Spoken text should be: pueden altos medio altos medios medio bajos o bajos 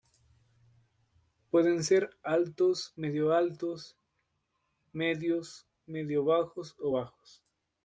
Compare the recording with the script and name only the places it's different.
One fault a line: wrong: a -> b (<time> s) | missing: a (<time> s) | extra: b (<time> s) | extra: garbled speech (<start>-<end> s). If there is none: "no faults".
extra: ser (1.8 s)